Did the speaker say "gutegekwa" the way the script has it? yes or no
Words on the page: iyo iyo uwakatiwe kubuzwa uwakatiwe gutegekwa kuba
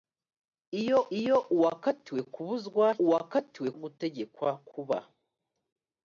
yes